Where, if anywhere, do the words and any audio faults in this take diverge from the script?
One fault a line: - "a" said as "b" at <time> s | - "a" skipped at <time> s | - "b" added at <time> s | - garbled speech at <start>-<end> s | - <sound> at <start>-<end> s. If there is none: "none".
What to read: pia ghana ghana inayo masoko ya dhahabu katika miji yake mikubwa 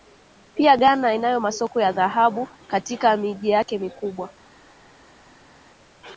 - "ghana" skipped at 1.1 s